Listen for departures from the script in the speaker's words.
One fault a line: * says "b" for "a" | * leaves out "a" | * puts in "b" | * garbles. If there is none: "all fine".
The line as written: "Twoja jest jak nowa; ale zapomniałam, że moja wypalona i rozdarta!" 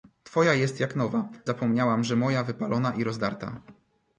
* leaves out "ale"